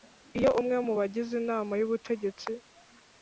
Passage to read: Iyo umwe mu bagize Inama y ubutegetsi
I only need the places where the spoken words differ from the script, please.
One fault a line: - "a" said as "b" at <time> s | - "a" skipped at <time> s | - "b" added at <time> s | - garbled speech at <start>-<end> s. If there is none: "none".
none